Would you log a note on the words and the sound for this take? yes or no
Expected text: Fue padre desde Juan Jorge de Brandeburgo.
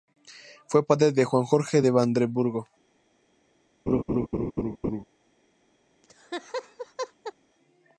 yes